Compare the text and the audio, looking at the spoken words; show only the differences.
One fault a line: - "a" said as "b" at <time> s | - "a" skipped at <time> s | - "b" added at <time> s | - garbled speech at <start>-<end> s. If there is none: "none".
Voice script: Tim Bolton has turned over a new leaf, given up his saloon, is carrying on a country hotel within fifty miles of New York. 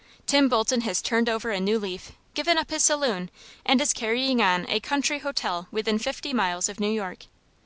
- "and" added at 3.7 s